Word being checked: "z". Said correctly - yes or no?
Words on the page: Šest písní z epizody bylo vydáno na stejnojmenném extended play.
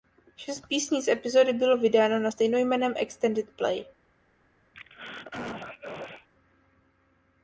yes